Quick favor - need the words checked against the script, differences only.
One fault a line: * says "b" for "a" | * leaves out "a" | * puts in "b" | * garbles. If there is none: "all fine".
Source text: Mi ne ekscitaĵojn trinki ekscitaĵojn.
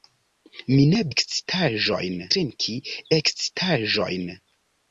all fine